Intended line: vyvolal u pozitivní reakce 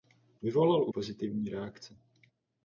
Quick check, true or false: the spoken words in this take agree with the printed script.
true